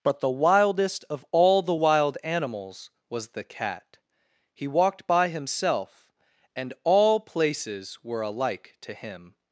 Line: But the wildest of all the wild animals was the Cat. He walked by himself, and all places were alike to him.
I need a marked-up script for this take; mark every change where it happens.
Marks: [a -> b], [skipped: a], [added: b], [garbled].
But the wildest of all the wild animals was the Cat. He walked by himself, and all places were alike to him.